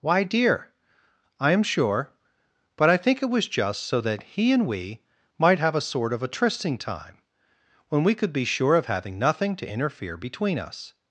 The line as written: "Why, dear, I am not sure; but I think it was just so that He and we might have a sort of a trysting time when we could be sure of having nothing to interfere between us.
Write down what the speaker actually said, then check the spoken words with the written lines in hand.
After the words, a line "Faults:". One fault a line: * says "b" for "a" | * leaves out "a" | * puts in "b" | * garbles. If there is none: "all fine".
"Why, dear, I am sure; but I think it was just so that He and we might have a sort of a trysting time when we could be sure of having nothing to interfere between us.
Faults:
* leaves out "not"